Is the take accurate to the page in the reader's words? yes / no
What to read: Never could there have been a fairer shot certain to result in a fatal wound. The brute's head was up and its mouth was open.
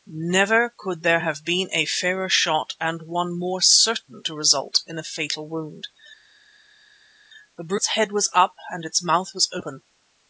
no